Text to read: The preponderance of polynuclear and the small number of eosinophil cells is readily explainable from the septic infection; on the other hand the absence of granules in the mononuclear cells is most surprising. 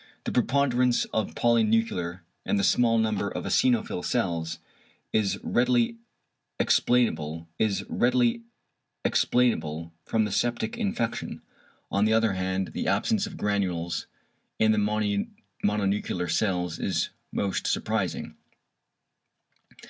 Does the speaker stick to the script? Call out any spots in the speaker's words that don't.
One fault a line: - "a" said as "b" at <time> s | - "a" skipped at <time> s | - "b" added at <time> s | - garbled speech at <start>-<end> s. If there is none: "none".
- "is readily explainable" added at 7.6 s